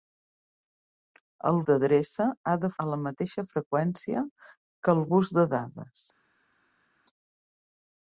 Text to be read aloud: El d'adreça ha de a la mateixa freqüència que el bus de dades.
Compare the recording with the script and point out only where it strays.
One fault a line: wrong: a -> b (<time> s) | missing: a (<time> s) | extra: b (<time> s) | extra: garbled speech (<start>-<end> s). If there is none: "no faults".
no faults